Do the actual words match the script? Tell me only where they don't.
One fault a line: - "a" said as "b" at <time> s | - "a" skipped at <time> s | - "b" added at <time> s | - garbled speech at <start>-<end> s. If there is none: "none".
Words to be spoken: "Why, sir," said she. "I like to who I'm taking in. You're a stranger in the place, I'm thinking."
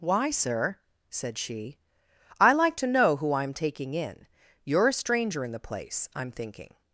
- "know" added at 2.9 s